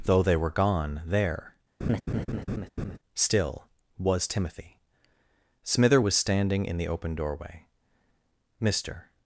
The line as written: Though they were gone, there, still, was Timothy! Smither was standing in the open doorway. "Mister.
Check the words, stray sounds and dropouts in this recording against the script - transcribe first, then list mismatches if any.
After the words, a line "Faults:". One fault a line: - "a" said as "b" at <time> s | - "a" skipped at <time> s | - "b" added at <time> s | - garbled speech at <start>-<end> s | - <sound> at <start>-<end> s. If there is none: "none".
Though they were gone, there, still, was Timothy! Smither was standing in the open doorway. "Mister.
Faults:
- laugh at 1.8-3.0 s